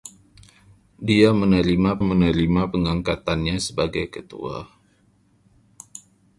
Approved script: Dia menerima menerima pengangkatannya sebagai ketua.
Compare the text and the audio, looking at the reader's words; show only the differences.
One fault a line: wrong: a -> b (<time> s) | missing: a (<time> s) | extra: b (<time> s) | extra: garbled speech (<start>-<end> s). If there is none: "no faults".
no faults